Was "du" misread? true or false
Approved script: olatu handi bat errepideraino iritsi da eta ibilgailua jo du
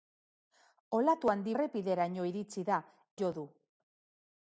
false